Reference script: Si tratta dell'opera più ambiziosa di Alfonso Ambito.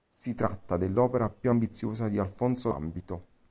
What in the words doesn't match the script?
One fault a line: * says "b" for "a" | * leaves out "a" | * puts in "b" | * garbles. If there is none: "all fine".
all fine